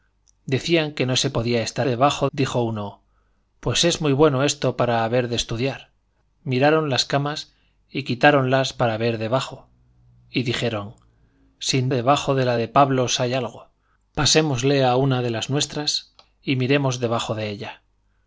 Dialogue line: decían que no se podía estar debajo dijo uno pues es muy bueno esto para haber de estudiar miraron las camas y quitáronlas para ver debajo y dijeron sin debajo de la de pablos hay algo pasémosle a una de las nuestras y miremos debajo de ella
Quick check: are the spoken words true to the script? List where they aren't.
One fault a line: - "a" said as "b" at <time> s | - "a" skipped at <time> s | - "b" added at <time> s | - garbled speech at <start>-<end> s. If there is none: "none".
none